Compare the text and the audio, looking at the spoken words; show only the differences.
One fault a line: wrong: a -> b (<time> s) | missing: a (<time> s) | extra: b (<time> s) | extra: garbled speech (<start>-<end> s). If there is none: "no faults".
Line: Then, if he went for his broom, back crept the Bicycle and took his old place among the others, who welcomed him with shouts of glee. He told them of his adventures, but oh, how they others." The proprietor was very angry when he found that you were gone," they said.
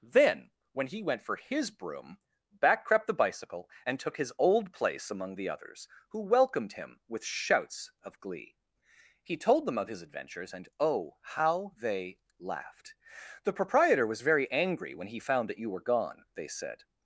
wrong: if -> when (0.7 s)
wrong: but -> and (10.5 s)
wrong: others -> laughed (12.4 s)